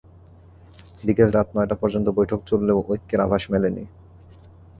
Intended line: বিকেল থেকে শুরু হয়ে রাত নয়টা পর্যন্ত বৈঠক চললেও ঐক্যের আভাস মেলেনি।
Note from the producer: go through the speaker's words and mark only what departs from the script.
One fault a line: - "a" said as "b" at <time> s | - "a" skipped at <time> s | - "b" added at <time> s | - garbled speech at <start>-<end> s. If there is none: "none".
- "থেকে শুরু হয়ে" skipped at 1.3 s